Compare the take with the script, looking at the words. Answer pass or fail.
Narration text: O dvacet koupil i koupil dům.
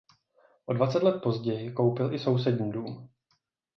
fail